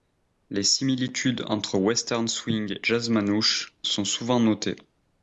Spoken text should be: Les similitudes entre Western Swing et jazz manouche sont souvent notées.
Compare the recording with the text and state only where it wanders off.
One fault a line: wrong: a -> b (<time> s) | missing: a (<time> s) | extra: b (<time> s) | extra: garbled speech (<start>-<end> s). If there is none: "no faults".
missing: et (2.8 s)